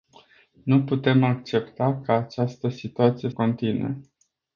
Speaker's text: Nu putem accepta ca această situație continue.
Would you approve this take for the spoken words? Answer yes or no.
yes